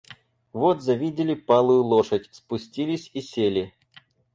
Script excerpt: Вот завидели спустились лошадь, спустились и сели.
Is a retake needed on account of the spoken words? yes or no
yes